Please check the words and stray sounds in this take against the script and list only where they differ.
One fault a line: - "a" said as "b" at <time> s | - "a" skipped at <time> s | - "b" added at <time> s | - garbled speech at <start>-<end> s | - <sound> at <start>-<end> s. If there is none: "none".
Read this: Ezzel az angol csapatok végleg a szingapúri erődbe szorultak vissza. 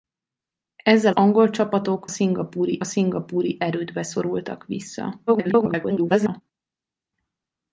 - "az" skipped at 1.1 s
- "végleg" said as "szingapúri" at 2.1 s
- garbled speech at 5.3-6.4 s